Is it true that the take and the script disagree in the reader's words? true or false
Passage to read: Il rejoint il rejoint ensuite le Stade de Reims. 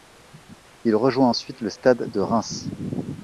true